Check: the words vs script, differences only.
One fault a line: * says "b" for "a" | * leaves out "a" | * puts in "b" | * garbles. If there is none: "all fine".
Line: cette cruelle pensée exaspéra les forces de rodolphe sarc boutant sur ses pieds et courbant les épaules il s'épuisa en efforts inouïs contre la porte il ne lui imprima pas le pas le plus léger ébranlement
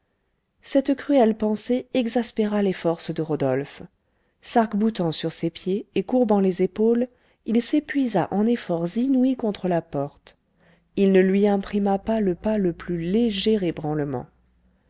all fine